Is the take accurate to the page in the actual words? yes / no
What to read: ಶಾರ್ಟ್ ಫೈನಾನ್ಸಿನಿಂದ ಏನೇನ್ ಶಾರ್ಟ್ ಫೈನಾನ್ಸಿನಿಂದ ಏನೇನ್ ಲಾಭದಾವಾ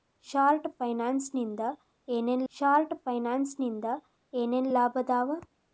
yes